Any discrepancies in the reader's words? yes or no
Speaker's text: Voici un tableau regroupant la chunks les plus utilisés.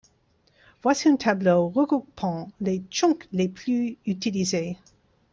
yes